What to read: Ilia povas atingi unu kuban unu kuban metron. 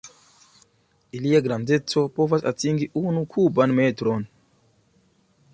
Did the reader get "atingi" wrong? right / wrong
right